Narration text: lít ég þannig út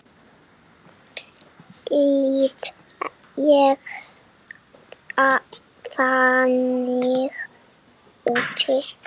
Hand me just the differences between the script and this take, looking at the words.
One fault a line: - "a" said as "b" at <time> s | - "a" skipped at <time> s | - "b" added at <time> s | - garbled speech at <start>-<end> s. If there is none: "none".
none